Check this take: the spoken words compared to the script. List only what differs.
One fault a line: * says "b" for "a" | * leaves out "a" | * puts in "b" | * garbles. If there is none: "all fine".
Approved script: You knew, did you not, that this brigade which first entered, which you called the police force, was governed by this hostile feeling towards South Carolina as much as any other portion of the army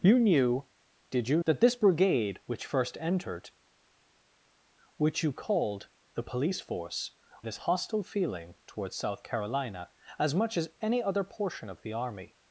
* leaves out "not"
* leaves out "was governed by"